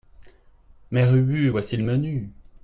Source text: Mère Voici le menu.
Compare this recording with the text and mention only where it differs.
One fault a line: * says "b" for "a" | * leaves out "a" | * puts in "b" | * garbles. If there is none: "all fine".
* puts in "Ubu"